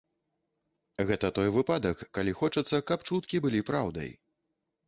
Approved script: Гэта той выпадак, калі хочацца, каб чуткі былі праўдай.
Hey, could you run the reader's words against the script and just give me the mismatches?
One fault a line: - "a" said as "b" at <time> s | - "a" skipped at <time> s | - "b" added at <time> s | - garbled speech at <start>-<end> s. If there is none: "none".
none